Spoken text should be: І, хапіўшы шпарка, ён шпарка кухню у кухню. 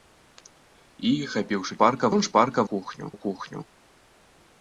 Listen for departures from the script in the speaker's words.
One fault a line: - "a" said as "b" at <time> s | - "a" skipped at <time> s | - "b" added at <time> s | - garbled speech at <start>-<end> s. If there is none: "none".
none